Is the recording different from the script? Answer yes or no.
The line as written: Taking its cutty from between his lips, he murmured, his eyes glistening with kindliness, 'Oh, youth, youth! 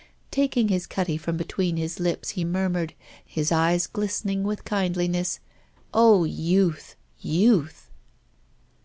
yes